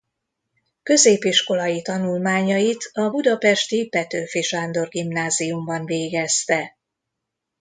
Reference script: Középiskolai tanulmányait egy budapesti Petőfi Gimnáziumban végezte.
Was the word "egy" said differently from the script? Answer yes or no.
yes